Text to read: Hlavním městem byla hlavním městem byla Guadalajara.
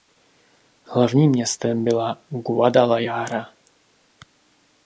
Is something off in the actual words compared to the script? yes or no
yes